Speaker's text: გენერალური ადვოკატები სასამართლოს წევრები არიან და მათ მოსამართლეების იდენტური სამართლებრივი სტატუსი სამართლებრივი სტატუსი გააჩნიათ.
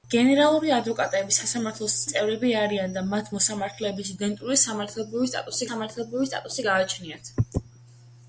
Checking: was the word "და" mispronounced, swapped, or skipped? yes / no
no